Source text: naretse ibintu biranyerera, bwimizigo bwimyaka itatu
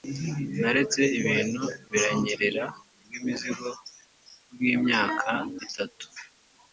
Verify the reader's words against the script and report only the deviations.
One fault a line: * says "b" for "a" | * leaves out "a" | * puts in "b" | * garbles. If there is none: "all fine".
all fine